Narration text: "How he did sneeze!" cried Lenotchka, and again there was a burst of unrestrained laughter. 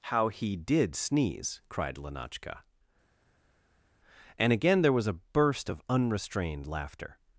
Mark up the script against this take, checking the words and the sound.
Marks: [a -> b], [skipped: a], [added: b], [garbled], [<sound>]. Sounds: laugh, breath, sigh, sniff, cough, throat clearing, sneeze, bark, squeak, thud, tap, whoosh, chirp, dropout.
"How he did sneeze!" cried Lenotchka, and again there was a burst of unrestrained laughter.